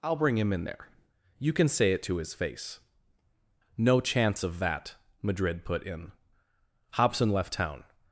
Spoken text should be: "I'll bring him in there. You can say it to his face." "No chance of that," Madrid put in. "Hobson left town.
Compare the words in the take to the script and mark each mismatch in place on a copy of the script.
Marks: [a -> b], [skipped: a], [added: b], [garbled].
"I'll bring him in there. You can say it to his face." "No chance of that," Madrid put in. "Hobson left town.